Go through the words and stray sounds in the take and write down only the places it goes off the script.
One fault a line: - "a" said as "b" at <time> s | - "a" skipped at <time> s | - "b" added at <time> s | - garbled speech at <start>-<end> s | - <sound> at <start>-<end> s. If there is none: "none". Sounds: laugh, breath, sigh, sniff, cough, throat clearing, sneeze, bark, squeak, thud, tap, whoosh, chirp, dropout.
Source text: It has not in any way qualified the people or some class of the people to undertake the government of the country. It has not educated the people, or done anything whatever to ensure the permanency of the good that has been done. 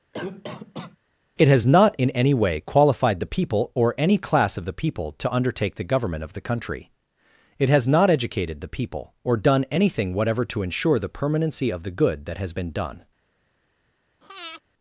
- cough at 0.1-1.0 s
- "some" said as "any" at 4.0 s
- breath at 14.2-14.6 s